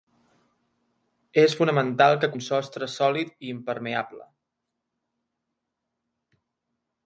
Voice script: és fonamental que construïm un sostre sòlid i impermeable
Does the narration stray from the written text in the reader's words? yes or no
yes